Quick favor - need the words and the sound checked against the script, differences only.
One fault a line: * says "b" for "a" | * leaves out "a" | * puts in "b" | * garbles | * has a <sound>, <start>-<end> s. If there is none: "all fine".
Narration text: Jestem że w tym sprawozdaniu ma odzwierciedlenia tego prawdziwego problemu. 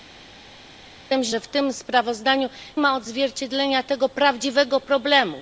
all fine